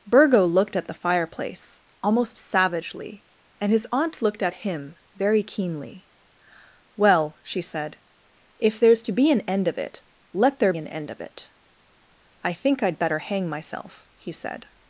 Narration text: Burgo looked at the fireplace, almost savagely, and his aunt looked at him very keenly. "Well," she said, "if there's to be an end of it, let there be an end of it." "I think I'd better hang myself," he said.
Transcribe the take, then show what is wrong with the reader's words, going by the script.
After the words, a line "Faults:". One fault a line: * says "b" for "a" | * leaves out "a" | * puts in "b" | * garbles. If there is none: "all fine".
Burgo looked at the fireplace, almost savagely, and his aunt looked at him very keenly. "Well," she said, "if there's to be an end of it, let there an end of it." "I think I'd better hang myself," he said.
Faults:
* leaves out "be"